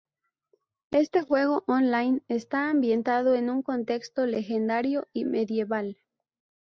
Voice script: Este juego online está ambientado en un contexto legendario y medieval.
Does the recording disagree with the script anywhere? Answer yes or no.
no